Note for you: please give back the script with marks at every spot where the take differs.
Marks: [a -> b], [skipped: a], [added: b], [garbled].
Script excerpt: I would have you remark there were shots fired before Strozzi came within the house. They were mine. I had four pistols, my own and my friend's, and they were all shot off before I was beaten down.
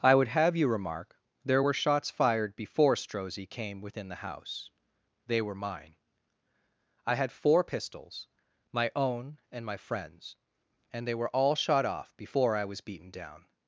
I would have you remark there were shots fired before Strozzi came within the house. They were mine. I had four pistols, my own and my friend's, and they were all shot off before I was beaten down.